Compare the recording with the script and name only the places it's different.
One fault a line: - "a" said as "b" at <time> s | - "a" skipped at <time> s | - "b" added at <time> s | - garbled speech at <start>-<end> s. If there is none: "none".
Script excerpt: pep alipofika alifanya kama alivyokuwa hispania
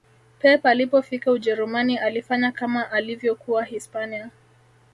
- "ujerumani" added at 1.3 s